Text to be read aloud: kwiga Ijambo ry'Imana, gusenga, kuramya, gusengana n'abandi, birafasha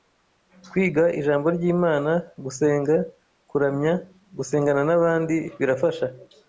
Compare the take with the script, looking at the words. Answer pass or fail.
pass